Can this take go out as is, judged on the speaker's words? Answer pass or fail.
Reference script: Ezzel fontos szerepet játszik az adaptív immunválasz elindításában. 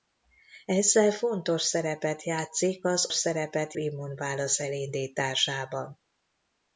fail